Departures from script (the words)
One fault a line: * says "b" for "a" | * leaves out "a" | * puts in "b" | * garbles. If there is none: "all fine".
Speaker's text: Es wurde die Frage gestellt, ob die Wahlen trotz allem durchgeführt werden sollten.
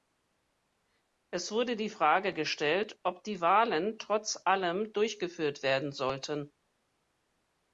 all fine